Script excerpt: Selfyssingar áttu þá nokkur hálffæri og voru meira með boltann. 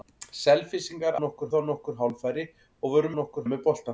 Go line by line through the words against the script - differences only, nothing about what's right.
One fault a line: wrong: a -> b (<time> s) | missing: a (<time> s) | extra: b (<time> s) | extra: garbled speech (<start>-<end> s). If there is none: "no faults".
wrong: áttu -> nokkur (1.2 s)
wrong: meira -> nokkur (3.2 s)